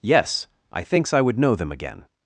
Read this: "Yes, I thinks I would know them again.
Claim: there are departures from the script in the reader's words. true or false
false